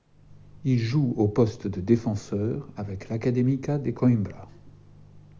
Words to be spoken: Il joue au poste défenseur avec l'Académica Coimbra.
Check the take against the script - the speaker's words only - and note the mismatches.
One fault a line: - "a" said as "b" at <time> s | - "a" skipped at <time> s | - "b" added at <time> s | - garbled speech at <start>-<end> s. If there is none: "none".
- "de" added at 1.7 s
- "de" added at 3.8 s